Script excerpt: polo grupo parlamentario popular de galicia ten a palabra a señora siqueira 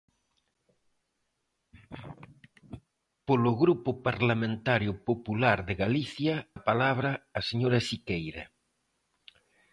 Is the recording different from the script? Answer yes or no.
yes